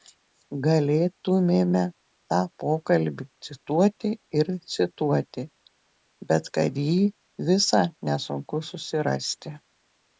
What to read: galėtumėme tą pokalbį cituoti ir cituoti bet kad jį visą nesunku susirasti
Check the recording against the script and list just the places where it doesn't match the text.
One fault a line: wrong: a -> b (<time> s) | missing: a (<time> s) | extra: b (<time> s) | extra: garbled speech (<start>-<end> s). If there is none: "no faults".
no faults